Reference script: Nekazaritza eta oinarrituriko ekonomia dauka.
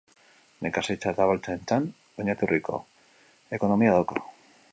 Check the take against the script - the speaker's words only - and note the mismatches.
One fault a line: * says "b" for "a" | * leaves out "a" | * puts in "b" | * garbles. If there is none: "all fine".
* puts in "abeltzaintzan"